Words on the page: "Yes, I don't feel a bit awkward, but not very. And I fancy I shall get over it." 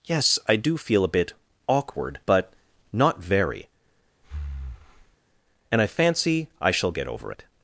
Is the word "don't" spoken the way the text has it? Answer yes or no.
no